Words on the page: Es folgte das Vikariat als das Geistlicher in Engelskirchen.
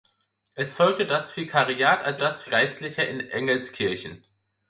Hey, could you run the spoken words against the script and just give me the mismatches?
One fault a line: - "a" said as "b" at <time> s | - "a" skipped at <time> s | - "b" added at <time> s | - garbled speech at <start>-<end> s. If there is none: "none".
none